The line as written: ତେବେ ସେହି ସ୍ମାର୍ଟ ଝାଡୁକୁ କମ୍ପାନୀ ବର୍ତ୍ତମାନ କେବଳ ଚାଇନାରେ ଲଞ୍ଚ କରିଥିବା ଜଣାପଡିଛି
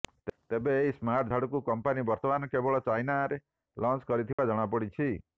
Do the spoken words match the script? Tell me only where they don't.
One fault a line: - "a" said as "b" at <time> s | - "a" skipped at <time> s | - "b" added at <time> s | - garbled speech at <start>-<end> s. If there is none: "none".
- "ସେହି" said as "ଏହି" at 0.8 s